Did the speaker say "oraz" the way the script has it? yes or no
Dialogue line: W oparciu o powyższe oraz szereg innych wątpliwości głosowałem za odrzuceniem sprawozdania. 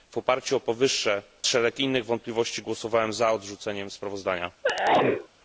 no